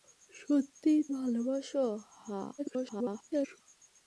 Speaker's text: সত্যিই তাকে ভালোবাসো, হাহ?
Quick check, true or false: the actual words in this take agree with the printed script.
false